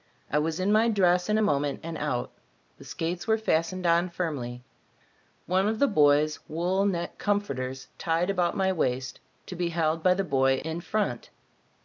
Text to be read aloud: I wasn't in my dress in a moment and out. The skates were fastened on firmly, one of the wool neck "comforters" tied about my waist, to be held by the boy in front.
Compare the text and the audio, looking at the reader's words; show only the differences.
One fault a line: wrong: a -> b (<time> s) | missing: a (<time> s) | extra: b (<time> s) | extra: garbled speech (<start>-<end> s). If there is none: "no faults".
wrong: wasn't -> was (0.4 s)
extra: boy's (5.9 s)